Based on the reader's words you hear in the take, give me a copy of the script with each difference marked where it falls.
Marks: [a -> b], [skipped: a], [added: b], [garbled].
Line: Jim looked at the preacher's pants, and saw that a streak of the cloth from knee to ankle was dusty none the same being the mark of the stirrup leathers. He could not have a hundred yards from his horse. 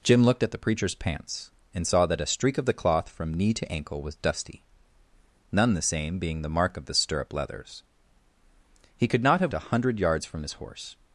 Jim looked at the preacher's pants, and saw that a streak of the cloth from knee to ankle was dusty none the same being the mark of the stirrup leathers. He could not have a hundred yards from his horse.